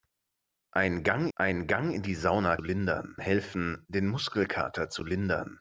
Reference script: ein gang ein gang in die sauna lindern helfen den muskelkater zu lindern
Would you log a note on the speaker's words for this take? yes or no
no